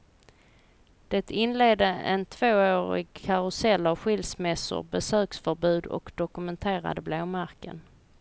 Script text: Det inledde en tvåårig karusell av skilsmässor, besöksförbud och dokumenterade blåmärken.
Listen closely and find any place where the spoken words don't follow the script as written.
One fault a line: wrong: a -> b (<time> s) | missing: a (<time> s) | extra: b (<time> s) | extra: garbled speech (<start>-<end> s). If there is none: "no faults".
no faults